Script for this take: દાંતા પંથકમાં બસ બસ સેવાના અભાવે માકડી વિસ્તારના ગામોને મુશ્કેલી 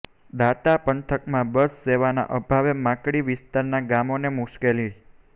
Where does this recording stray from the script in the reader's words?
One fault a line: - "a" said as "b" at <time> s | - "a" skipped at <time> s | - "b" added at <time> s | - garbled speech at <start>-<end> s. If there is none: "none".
- "બસ" skipped at 1.8 s